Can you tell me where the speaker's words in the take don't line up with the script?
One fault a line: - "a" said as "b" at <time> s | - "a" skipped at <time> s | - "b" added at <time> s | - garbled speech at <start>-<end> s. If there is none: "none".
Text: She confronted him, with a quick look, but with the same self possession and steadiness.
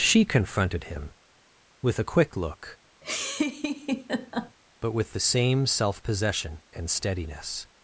none